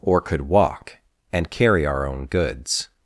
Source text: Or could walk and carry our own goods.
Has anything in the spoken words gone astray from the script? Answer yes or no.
no